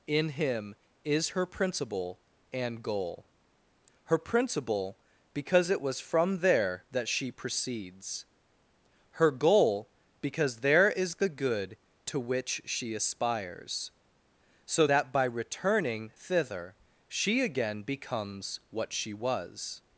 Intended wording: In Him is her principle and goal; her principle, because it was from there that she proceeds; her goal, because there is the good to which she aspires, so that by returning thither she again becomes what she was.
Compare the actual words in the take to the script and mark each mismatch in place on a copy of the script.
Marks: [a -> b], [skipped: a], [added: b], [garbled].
In Him is her principle and goal; her principle, because it was from there that she proceeds; her goal, because there is the good to which she aspires, so that by returning thither she again becomes what she was.